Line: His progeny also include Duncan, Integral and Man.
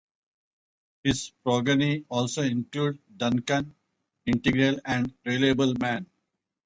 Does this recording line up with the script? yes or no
no